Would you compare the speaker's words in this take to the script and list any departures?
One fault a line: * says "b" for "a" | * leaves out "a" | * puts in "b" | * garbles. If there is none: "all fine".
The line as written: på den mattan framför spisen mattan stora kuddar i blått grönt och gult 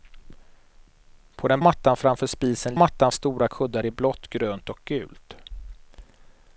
all fine